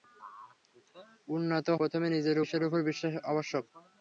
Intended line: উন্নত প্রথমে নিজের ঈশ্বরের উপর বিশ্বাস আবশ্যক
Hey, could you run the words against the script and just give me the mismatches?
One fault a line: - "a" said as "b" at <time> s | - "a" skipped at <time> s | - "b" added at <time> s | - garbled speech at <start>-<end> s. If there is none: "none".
none